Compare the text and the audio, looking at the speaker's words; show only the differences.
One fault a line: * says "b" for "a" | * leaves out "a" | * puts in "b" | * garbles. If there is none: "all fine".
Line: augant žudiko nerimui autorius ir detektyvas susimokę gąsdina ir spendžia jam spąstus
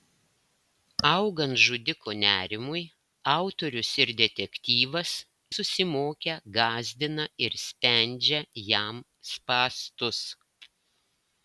all fine